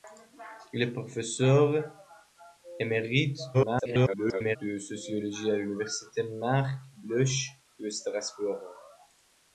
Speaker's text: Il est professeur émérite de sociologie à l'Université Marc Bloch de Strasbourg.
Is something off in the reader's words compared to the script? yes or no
yes